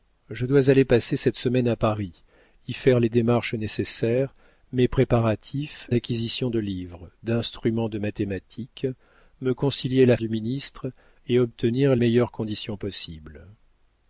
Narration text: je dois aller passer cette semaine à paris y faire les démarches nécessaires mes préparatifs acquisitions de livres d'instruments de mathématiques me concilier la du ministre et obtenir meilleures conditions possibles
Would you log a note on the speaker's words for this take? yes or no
no